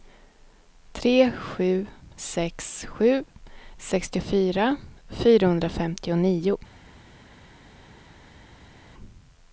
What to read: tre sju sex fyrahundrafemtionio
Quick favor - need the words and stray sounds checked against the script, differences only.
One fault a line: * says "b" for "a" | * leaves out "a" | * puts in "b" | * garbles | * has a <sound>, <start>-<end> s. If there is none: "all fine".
* puts in "sju sextiofyra"